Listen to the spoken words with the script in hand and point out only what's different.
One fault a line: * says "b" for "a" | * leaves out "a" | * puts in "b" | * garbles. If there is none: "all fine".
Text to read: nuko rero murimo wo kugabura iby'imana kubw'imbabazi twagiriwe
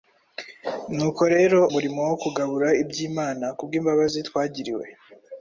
all fine